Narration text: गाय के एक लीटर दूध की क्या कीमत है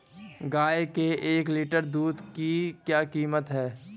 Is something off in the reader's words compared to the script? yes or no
no